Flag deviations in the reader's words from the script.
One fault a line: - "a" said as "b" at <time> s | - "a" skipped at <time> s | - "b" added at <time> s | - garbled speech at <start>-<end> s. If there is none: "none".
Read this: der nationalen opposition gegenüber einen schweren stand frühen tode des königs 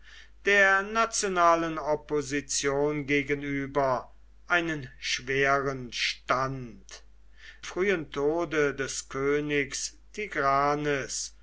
none